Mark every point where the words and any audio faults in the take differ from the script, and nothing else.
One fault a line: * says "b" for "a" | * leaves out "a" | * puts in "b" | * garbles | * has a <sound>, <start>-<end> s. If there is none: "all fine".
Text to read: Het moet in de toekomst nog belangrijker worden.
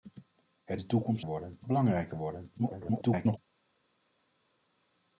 * leaves out "moet in"
* says "worden" for "nog"
* garbles